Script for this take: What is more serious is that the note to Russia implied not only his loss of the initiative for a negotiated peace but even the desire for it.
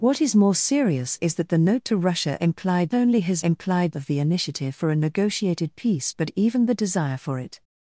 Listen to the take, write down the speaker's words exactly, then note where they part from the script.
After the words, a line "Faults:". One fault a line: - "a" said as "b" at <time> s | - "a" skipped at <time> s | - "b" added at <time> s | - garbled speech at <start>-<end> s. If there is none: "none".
What is more serious is that the note to Russia implied only his implied of the initiative for a negotiated peace but even the desire for it.
Faults:
- "not" skipped at 3.0 s
- "loss" said as "implied" at 3.4 s